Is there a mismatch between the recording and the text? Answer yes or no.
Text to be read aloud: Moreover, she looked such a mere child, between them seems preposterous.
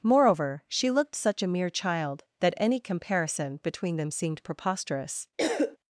yes